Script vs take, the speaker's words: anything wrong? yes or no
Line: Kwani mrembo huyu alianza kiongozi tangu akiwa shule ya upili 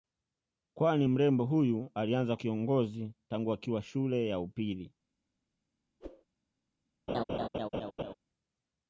no